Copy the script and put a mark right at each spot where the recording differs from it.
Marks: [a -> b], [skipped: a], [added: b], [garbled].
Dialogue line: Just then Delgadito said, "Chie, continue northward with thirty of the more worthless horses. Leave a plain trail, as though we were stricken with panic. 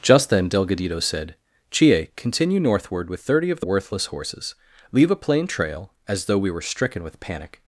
Just then Delgadito said, "Chie, continue northward with thirty of the [skipped: more] worthless horses. Leave a plain trail, as though we were stricken with panic.